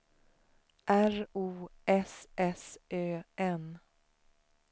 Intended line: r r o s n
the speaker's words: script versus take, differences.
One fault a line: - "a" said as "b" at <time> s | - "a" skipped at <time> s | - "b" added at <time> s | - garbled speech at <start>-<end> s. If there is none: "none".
- "r" skipped at 1.3 s
- "s ö" added at 2.4 s